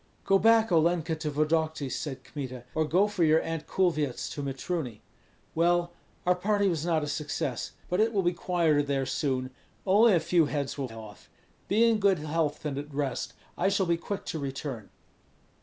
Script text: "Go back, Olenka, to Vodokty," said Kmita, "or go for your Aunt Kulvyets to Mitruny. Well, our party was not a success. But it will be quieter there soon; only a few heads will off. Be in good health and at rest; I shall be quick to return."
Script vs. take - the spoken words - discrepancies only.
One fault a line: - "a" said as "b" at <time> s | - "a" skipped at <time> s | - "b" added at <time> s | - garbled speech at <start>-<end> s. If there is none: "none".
none